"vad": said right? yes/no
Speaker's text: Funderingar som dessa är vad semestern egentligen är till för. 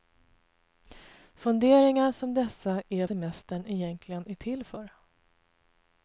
no